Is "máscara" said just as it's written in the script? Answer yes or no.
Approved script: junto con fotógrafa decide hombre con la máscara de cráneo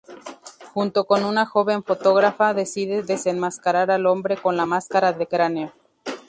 yes